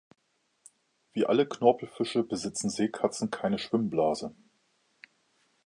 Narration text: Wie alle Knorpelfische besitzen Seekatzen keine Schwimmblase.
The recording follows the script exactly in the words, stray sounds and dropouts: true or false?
true